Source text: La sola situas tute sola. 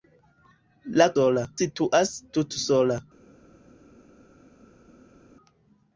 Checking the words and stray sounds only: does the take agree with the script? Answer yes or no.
yes